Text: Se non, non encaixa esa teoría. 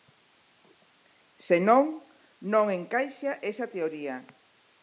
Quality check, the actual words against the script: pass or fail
pass